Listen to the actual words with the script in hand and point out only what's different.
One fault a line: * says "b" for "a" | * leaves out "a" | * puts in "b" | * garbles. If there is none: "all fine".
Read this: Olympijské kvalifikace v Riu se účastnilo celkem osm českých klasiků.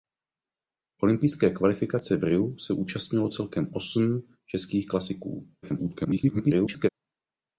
* garbles